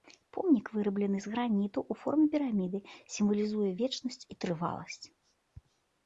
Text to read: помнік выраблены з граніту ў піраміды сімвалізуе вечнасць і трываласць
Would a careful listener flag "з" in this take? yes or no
no